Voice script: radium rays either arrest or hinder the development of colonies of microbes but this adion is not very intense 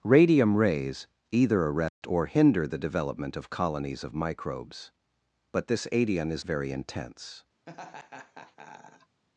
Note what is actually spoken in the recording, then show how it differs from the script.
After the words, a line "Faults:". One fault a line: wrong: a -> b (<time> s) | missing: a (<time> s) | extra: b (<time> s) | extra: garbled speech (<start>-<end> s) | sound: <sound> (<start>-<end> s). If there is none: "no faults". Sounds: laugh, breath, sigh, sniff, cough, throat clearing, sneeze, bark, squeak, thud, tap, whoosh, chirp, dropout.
radium rays either arrest or hinder the development of colonies of microbes but this adion is very intense
Faults:
sound: dropout (1.9-2.0 s)
missing: not (6.4 s)
sound: laugh (7.7-9.2 s)